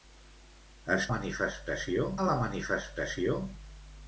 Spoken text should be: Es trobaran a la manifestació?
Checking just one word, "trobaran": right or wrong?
wrong